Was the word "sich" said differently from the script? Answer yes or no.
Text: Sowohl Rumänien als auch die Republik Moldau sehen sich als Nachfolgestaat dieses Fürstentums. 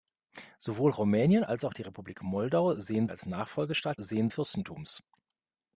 yes